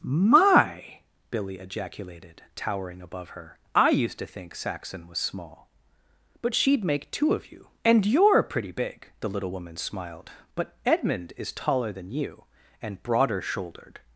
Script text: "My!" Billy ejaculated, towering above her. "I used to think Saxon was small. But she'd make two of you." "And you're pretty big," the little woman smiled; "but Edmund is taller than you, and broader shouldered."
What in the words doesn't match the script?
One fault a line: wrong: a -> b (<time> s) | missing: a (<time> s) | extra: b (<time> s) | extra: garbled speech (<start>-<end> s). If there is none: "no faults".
no faults